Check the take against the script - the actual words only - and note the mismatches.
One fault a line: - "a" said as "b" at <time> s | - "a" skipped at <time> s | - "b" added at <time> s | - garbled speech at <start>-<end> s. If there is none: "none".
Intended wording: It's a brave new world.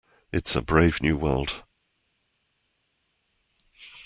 none